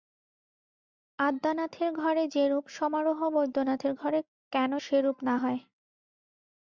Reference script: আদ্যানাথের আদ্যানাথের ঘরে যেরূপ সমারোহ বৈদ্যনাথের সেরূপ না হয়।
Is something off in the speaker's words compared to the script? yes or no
yes